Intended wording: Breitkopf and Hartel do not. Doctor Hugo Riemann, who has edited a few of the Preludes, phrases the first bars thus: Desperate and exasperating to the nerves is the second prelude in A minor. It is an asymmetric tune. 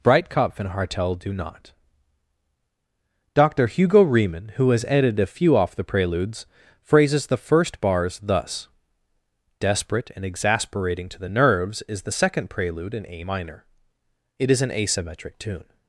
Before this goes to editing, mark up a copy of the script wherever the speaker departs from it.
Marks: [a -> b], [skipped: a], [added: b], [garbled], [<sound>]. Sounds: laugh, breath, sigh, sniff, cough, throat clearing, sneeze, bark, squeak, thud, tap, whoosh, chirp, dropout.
Breitkopf and Hartel do not. Doctor Hugo Riemann, who has edited a few [of -> off] the Preludes, phrases the first bars thus: Desperate and exasperating to the nerves is the second prelude in A minor. It is an asymmetric tune.